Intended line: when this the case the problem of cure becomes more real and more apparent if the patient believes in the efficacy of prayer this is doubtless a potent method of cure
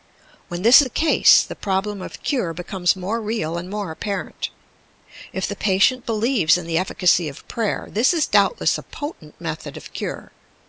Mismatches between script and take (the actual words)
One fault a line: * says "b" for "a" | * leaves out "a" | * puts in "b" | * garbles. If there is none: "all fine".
all fine